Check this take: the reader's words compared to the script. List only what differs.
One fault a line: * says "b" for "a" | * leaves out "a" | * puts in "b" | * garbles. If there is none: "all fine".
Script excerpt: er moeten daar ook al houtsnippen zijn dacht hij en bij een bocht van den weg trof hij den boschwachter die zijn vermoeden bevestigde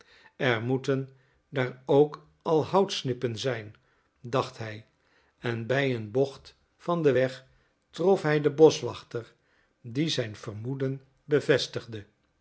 all fine